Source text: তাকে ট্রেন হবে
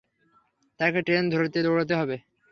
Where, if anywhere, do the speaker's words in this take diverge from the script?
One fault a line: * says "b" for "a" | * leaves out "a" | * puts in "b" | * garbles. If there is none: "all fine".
* puts in "ধরতে দৌড়াতে"